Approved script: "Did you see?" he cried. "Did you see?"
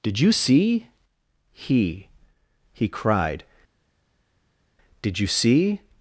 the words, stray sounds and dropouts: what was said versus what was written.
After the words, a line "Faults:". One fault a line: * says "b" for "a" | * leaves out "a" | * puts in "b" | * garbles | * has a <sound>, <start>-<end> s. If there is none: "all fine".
"Did you see?" he he cried. "Did you see?"
Faults:
* puts in "he"